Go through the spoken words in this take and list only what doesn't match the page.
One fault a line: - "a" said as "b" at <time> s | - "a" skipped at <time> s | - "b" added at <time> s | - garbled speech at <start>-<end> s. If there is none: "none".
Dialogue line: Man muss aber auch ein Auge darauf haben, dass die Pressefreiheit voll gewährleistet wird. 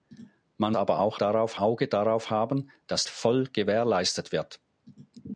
- "muss" skipped at 0.8 s
- "ein" said as "darauf" at 1.1 s
- "die Pressefreiheit" skipped at 3.1 s